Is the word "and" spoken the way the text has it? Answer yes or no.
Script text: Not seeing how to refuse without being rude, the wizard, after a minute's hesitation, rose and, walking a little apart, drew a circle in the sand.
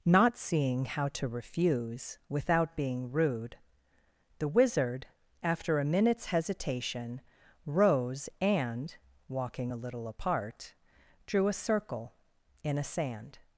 yes